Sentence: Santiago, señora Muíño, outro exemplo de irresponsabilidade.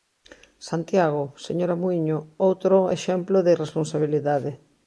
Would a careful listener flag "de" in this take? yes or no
no